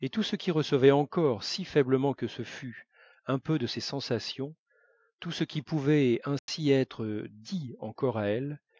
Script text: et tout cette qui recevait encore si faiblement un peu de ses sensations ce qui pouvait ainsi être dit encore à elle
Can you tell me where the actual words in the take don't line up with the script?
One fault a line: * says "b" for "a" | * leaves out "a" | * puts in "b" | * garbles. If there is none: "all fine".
* says "ce" for "cette"
* puts in "que ce fût"
* puts in "tout"